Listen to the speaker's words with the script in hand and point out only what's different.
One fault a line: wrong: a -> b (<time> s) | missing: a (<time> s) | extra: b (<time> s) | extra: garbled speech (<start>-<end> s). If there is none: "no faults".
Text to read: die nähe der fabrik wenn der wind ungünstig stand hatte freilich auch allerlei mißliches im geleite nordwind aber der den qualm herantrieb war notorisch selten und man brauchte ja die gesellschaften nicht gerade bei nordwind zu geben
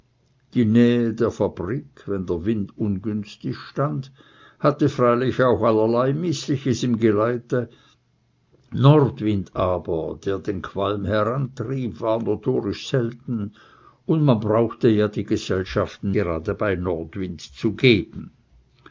missing: nicht (16.1 s)